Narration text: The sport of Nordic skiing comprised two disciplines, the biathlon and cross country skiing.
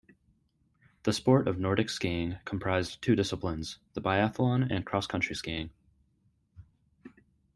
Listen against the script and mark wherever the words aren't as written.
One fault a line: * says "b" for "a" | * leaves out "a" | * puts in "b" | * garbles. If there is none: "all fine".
all fine